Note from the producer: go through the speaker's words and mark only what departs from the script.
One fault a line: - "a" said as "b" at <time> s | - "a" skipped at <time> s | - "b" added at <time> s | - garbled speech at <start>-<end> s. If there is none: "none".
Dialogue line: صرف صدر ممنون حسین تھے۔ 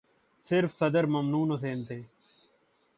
none